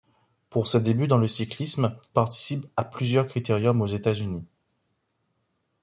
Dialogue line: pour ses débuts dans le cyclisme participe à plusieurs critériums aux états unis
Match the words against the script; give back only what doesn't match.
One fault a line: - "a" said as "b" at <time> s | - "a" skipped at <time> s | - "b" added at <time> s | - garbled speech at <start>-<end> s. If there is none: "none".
none